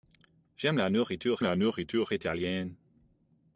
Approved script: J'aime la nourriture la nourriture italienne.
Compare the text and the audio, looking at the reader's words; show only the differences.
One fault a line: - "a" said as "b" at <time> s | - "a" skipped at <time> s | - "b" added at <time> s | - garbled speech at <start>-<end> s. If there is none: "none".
none